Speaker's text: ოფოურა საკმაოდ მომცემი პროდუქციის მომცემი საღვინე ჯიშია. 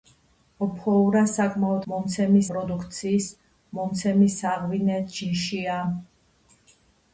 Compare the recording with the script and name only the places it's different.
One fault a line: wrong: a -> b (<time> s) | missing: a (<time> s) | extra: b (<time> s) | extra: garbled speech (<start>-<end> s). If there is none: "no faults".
no faults